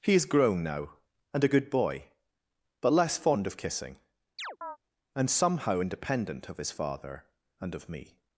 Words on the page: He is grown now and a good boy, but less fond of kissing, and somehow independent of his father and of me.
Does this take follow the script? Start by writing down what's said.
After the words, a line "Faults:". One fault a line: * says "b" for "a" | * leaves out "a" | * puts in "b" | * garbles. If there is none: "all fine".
He is grown now and a good boy, but less fond of kissing, and somehow independent of his father and of me.
Faults:
all fine